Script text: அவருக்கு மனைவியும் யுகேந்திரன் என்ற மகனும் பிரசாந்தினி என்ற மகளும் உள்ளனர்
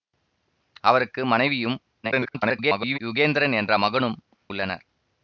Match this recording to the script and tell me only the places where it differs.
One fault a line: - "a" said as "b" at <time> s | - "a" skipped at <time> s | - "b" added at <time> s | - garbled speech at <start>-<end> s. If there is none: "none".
- garbled speech at 2.0-3.0 s
- "பிரசாந்தினி என்ற மகளும்" skipped at 4.2 s